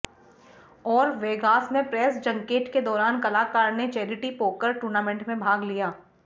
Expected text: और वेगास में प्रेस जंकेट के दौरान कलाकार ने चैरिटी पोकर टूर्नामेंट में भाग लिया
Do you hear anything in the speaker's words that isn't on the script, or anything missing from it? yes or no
no